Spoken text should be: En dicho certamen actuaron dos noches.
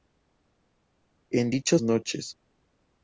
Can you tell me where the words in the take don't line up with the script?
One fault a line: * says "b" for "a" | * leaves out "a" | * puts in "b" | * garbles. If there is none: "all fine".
* leaves out "certamen actuaron dos"